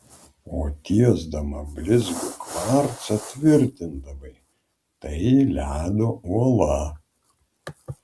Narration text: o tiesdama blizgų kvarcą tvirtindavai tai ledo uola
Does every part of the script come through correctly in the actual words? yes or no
yes